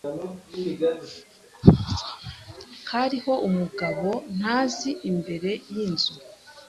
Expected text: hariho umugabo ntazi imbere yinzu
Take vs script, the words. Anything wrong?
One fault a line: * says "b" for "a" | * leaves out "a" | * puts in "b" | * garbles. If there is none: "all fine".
all fine